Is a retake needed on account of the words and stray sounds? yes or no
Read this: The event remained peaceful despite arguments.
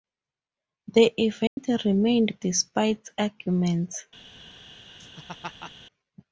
yes